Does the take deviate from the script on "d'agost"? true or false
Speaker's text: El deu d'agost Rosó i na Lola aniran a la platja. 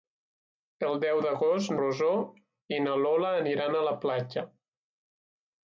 false